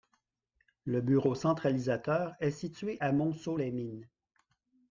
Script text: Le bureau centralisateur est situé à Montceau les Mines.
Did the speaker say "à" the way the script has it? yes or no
yes